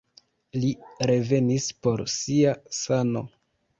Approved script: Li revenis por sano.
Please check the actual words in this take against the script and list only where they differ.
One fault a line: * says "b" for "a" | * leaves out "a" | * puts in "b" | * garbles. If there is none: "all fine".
* puts in "sia"